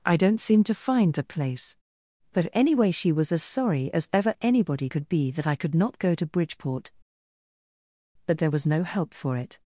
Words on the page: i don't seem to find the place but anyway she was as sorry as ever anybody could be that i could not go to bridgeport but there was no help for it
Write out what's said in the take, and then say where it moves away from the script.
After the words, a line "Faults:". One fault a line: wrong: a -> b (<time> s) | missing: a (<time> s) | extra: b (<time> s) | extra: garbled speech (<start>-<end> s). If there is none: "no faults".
i don't seem to find the place but anyway she was as sorry as ever anybody could be that i could not go to bridgeport but there was no help for it
Faults:
no faults